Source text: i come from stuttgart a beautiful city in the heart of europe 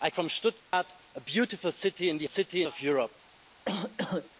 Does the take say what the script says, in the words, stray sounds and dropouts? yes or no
no